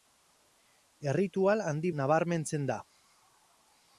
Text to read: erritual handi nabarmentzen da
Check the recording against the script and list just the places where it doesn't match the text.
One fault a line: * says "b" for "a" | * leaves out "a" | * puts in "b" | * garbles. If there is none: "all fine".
all fine